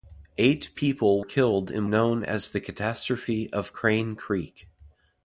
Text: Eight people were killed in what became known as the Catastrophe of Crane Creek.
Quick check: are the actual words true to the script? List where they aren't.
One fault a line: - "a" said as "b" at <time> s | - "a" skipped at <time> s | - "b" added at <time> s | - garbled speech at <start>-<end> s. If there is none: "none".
- "were" skipped at 1.2 s
- "what became" skipped at 1.9 s